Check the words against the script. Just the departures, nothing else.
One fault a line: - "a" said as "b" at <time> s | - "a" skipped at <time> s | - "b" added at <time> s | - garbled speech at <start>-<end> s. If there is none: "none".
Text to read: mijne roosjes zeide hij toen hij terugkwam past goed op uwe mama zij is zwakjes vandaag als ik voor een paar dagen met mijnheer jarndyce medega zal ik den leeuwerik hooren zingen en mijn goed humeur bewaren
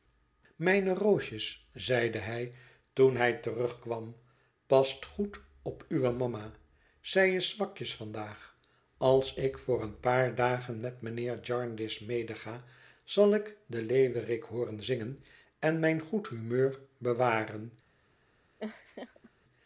none